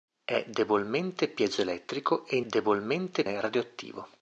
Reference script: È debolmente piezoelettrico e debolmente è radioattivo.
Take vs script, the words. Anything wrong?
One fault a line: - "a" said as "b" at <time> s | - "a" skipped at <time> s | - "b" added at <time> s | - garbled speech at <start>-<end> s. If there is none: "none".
none